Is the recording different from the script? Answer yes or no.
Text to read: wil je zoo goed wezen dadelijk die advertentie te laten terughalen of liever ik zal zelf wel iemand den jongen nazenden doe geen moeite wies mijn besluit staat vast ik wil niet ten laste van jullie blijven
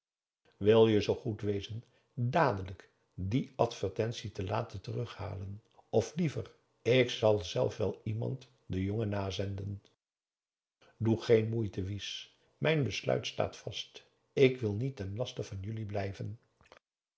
no